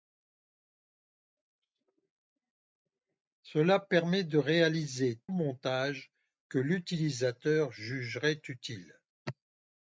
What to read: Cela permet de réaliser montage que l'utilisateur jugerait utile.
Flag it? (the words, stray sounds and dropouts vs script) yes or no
no